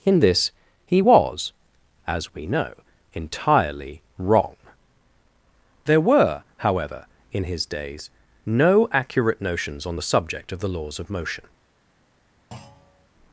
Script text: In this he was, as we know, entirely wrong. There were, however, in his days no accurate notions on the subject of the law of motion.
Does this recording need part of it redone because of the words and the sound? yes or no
yes